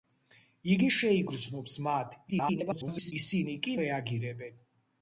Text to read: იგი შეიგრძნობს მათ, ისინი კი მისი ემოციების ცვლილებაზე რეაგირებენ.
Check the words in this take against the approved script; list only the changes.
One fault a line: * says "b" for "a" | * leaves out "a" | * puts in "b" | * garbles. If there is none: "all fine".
* garbles
* leaves out "მისი ემოციების ცვლილებაზე"